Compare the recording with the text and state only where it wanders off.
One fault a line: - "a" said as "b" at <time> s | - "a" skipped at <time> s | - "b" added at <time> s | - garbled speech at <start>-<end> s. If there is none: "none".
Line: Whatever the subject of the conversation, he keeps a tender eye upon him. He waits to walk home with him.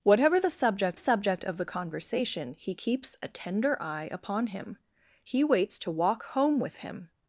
- "subject" added at 0.9 s